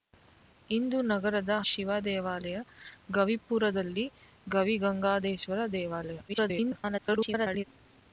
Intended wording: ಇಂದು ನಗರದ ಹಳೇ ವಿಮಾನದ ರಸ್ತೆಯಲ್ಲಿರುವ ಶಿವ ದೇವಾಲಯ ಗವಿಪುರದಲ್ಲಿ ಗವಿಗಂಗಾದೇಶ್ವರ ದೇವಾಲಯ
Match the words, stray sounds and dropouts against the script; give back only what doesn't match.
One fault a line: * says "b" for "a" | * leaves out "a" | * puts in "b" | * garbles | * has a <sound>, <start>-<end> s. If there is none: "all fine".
* leaves out "ಹಳೇ ವಿಮಾನದ ರಸ್ತೆಯಲ್ಲಿರುವ"
* garbles